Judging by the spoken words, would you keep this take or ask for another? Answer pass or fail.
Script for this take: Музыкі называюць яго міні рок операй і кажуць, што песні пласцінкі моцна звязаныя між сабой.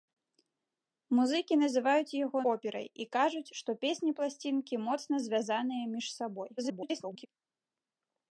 fail